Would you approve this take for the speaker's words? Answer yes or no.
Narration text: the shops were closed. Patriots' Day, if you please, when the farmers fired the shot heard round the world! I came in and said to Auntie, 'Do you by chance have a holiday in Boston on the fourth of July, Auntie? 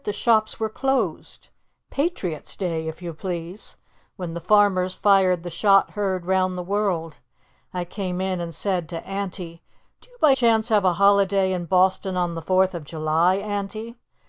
yes